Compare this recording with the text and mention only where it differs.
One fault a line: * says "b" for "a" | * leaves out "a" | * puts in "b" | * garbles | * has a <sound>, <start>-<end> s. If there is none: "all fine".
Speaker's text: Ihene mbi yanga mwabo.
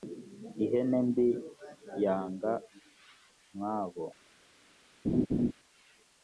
* has a laugh, 5.0-5.5 s